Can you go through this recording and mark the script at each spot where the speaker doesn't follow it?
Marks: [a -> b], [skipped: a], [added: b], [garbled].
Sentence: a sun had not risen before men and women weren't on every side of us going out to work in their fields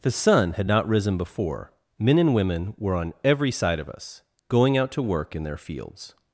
[a -> the] sun had not risen before men and women [weren't -> were] on every side of us going out to work in their fields